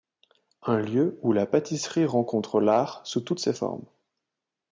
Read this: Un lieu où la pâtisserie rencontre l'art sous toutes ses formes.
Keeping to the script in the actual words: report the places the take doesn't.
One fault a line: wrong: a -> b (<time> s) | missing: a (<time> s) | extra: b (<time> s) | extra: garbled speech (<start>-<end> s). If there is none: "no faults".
no faults